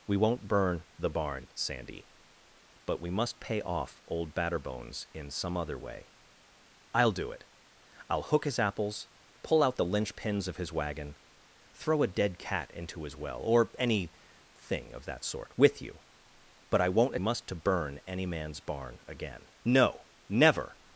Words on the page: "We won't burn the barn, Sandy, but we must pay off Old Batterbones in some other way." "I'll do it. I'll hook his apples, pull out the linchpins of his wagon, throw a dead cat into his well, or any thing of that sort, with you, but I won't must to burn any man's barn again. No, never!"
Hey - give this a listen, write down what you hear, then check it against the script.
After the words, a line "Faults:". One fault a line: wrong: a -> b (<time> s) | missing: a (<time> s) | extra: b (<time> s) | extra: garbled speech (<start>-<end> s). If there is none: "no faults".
"We won't burn the barn, Sandy, but we must pay off Old Batterbones in some other way." "I'll do it. I'll hook his apples, pull out the linchpins of his wagon, throw a dead cat into his well, or any thing of that sort, with you, but I won't must to burn any man's barn again. No, never!"
Faults:
no faults